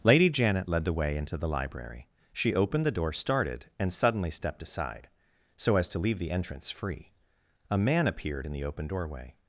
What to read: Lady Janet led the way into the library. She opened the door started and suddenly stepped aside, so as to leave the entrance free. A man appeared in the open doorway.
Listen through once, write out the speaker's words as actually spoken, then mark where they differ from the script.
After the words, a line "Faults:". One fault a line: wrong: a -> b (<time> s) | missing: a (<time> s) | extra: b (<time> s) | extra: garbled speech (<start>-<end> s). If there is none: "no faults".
Lady Janet led the way into the library. She opened the door started and suddenly stepped aside, so as to leave the entrance free. A man appeared in the open doorway.
Faults:
no faults